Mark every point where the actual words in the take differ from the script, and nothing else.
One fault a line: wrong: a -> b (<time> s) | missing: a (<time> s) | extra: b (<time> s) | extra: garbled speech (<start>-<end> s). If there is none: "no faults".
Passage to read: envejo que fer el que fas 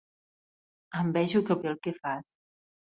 no faults